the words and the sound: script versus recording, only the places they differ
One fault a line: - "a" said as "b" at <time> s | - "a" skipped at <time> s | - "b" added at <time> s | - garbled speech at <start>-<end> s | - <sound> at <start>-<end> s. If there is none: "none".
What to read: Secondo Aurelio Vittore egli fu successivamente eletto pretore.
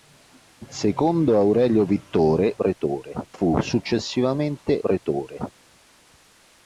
- "egli" said as "pretore" at 2.5 s
- "eletto" skipped at 4.8 s